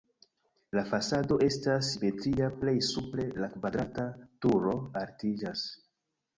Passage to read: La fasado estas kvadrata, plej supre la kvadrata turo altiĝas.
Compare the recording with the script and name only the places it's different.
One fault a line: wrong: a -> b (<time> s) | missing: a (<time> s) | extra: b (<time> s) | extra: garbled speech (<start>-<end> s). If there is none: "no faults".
wrong: kvadrata -> simetria (1.9 s)